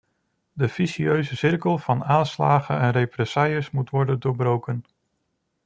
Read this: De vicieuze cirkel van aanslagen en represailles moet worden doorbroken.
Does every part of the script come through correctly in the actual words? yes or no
yes